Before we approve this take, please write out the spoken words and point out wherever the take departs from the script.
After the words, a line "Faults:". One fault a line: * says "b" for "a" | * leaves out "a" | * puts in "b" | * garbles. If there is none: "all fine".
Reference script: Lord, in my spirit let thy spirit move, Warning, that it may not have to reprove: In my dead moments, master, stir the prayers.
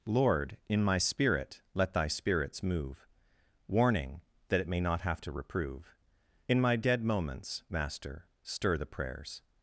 Lord, in my spirit let thy spirits move, Warning, that it may not have to reprove: In my dead moments, master, stir the prayers.
Faults:
* says "spirits" for "spirit"